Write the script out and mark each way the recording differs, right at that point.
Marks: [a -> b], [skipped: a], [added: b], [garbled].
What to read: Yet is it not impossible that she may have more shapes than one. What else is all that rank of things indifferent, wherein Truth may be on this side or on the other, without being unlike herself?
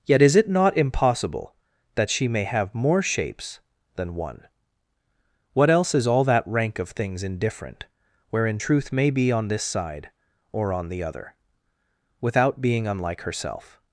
Yet is it not impossible that she may have more shapes than one. What else is all that rank of things indifferent, wherein Truth may be on this side or on the other, without being unlike herself?